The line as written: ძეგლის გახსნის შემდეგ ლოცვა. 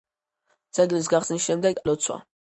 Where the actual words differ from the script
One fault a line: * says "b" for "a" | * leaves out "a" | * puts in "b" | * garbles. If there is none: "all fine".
all fine